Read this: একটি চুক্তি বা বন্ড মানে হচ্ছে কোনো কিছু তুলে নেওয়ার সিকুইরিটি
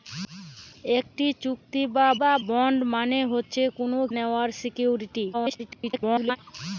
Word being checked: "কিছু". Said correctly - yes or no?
no